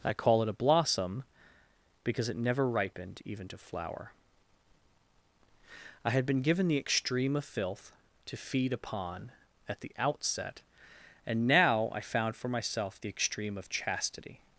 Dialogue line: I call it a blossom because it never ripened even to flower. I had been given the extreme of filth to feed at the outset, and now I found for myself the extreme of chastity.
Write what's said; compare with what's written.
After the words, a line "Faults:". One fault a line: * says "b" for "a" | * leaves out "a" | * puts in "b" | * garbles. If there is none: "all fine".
I call it a blossom because it never ripened even to flower. I had been given the extreme of filth to feed upon at the outset, and now I found for myself the extreme of chastity.
Faults:
* puts in "upon"